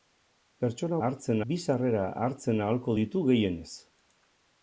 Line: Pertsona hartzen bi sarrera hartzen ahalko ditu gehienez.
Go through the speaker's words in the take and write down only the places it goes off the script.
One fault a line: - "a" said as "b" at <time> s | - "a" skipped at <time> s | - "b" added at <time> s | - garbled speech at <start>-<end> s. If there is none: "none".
none